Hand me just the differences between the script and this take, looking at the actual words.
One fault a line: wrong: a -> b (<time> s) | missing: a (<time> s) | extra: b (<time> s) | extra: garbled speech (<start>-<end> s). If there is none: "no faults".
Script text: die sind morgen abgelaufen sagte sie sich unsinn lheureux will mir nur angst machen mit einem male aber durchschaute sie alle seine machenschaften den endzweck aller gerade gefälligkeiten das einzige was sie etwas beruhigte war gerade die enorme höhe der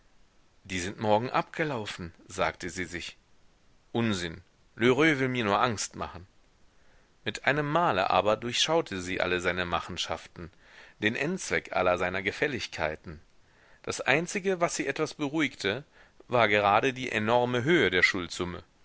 wrong: gerade -> seiner (12.0 s)